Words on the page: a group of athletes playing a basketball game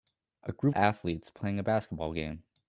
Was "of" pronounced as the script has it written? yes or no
no